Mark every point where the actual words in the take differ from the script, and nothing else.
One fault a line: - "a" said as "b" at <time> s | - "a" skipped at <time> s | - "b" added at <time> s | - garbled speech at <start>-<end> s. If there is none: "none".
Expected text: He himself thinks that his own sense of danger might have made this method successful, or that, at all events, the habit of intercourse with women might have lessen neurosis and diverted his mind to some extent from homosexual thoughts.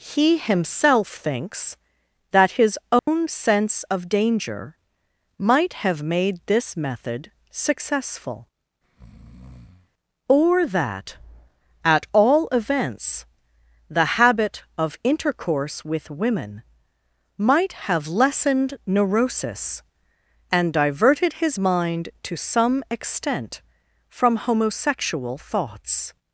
- "lessen" said as "lessened" at 18.1 s